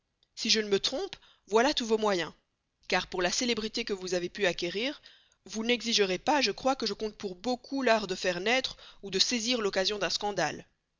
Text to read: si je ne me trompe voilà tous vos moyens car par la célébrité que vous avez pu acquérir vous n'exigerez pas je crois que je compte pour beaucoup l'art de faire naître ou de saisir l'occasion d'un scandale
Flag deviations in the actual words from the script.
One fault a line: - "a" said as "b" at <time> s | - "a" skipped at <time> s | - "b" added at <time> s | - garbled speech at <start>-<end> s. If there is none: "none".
- "par" said as "pour" at 3.0 s